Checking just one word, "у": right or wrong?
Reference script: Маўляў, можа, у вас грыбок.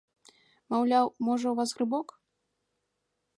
right